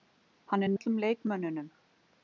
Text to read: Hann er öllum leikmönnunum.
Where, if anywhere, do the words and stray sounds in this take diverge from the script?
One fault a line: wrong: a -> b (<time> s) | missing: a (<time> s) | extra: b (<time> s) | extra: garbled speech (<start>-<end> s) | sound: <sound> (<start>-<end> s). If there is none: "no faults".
no faults